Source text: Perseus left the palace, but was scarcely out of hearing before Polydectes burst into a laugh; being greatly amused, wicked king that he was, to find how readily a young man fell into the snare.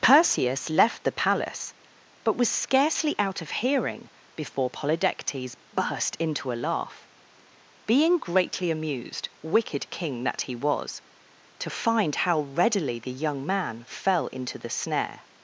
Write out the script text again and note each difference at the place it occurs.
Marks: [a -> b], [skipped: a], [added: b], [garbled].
Perseus left the palace, but was scarcely out of hearing before Polydectes burst into a laugh; being greatly amused, wicked king that he was, to find how readily [a -> the] young man fell into the snare.